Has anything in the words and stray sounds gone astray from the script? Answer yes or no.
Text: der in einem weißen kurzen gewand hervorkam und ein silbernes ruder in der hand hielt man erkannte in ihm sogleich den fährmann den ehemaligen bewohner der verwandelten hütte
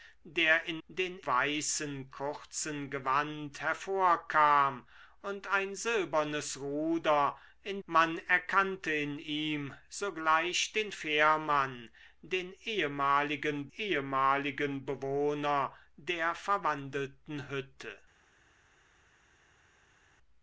yes